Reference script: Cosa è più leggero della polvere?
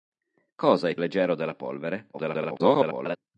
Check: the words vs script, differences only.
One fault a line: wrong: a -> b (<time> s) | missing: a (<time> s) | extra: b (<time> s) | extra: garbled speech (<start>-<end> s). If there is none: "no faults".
missing: più (0.9 s)
extra: garbled speech (2.1-3.2 s)